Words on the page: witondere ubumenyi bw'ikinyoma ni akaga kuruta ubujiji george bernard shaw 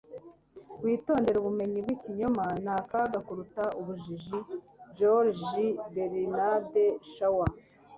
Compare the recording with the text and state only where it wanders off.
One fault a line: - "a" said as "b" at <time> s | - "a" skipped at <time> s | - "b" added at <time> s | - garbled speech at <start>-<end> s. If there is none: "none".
none